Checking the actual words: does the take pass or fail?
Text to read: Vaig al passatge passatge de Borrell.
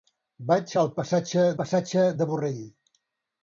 pass